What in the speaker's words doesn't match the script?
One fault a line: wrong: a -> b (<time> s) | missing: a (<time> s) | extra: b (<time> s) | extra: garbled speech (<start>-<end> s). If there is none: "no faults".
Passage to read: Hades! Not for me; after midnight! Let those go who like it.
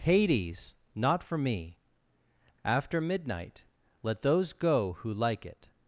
no faults